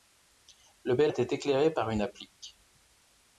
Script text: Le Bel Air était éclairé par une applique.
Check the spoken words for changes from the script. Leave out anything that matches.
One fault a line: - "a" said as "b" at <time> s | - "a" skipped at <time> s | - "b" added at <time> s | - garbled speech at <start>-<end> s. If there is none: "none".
- "Air" skipped at 1.1 s